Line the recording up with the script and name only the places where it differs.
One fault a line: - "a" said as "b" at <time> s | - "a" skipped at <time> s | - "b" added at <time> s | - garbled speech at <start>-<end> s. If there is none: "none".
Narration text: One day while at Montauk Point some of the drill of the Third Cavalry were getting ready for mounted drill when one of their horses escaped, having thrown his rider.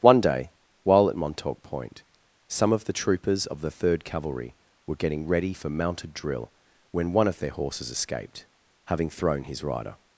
- "drill" said as "troopers" at 2.9 s